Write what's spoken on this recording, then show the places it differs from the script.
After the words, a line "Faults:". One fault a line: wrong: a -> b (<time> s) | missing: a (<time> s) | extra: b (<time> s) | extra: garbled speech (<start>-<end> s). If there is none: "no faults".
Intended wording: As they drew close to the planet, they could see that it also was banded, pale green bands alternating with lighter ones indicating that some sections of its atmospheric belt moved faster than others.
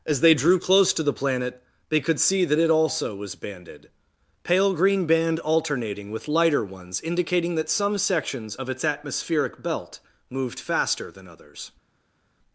As they drew close to the planet, they could see that it also was banded, pale green band alternating with lighter ones indicating that some sections of its atmospheric belt moved faster than others.
Faults:
wrong: bands -> band (5.0 s)